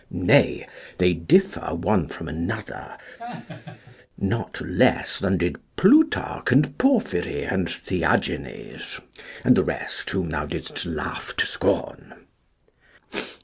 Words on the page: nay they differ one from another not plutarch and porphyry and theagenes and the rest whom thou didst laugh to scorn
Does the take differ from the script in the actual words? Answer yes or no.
yes